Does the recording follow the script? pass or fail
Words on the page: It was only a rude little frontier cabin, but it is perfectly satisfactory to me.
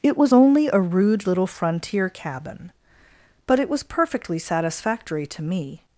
fail